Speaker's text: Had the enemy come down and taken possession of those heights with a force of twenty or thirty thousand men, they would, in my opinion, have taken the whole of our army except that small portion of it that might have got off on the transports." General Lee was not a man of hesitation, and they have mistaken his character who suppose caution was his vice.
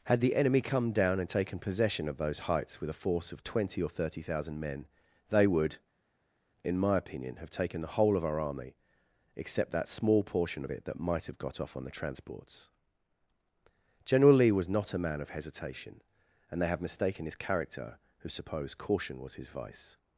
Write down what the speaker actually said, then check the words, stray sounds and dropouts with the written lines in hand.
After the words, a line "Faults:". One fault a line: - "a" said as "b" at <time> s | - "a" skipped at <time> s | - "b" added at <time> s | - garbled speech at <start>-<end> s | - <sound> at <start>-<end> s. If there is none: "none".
Had the enemy come down and taken possession of those heights with a force of twenty or thirty thousand men, they would, in my opinion, have taken the whole of our army except that small portion of it that might have got off on the transports." General Lee was not a man of hesitation, and they have mistaken his character who suppose caution was his vice.
Faults:
none